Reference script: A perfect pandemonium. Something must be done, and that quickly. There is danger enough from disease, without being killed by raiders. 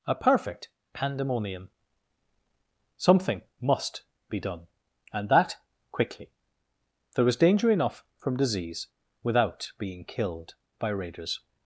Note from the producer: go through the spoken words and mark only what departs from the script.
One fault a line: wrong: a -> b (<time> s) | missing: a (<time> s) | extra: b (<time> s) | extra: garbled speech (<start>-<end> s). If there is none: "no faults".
wrong: is -> was (7.2 s)